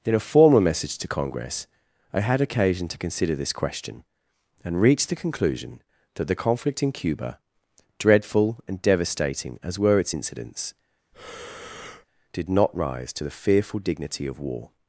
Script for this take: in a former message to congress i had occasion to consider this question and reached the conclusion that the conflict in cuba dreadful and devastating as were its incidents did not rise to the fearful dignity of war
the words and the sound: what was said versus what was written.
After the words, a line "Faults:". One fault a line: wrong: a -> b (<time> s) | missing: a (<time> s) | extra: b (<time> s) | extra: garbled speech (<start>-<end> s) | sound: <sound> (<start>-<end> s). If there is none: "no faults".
in a former message to congress i had occasion to consider this question and reached the conclusion that the conflict in cuba dreadful and devastating as were its incidents did not rise to the fearful dignity of war
Faults:
sound: breath (11.1-12.1 s)